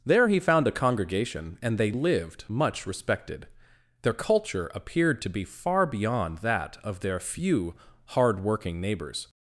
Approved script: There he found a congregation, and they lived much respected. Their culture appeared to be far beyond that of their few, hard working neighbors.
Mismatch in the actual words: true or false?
false